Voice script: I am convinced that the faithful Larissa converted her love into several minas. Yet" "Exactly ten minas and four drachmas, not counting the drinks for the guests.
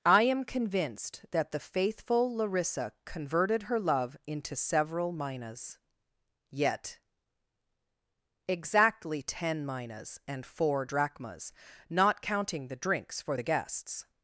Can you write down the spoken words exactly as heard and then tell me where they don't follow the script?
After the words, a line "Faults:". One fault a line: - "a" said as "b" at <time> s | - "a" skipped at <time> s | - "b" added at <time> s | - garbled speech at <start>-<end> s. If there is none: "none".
I am convinced that the faithful Larissa converted her love into several minas. Yet" "Exactly ten minas and four drachmas, not counting the drinks for the guests.
Faults:
none